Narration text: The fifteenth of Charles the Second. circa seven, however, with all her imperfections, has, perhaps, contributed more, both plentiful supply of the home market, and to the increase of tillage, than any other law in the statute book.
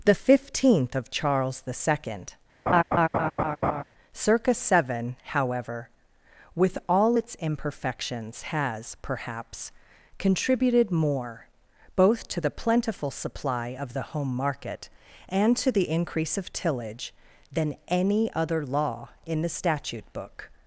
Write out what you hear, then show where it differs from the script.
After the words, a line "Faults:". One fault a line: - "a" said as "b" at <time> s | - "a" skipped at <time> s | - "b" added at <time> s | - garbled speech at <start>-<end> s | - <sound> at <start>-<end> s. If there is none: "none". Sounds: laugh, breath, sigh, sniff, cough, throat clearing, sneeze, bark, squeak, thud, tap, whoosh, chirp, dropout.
The fifteenth of Charles the Second. circa seven, however, with all its imperfections, has, perhaps, contributed more, both to the plentiful supply of the home market, and to the increase of tillage, than any other law in the statute book.
Faults:
- laugh at 2.7-3.8 s
- "her" said as "its" at 7.1 s
- "to the" added at 12.3 s